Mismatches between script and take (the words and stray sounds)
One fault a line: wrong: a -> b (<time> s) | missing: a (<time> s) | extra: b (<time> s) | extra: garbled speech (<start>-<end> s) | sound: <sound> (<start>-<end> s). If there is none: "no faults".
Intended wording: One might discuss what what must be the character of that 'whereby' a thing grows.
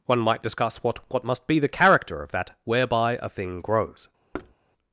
sound: thud (4.3-4.5 s)